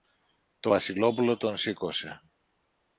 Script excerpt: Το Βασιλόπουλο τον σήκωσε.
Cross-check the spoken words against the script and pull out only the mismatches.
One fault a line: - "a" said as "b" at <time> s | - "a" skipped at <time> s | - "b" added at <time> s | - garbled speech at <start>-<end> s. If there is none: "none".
none